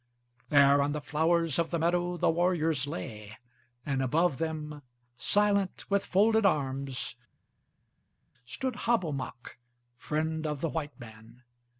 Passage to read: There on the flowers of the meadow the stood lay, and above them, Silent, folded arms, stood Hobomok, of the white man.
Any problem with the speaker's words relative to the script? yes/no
yes